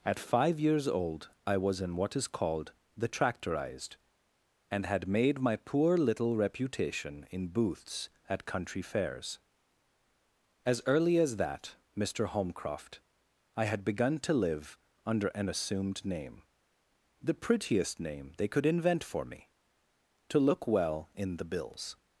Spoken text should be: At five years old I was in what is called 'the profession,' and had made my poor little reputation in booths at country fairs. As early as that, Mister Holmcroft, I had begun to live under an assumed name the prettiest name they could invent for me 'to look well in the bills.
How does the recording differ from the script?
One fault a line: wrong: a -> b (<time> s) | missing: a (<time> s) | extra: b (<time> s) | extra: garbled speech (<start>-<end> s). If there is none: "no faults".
wrong: profession -> tractorized (3.1 s)